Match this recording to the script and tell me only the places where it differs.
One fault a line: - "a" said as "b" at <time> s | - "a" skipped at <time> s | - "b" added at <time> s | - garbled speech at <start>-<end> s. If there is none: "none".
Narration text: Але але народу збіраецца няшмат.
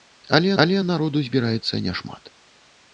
none